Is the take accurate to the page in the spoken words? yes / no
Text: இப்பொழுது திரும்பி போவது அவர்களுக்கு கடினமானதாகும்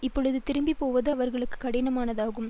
yes